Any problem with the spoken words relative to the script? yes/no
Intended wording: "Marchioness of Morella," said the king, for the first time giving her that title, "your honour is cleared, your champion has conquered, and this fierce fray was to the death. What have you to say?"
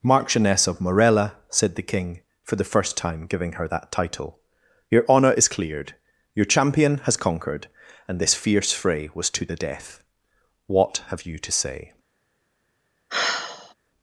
no